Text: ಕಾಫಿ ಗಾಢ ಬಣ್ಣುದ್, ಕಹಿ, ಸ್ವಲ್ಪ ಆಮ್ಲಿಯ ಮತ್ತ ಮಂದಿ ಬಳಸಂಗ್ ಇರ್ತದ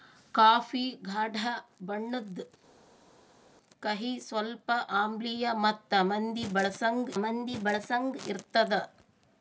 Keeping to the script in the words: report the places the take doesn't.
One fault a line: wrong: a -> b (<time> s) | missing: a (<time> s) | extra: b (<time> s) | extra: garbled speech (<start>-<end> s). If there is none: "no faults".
extra: ಮಂದಿ ಬಳಸಂಗ್ (7.2 s)